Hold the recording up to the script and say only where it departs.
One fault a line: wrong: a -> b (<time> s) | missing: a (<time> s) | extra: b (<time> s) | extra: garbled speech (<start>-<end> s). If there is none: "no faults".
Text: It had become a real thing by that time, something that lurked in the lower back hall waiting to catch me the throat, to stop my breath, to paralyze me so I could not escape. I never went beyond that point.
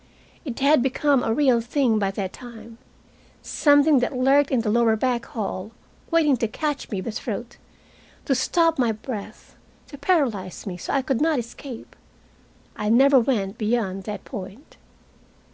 no faults